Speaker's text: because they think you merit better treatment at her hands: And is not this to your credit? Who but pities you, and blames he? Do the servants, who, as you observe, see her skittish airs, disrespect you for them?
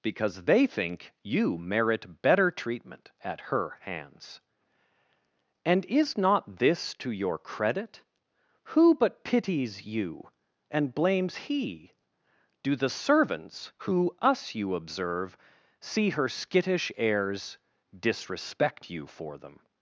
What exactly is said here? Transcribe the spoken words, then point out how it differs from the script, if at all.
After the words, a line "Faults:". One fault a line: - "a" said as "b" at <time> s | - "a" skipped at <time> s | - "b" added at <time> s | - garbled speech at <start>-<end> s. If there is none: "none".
because they think you merit better treatment at her hands: And is not this to your credit? Who but pities you, and blames he? Do the servants, who, us you observe, see her skittish airs, disrespect you for them?
Faults:
- "as" said as "us" at 14.2 s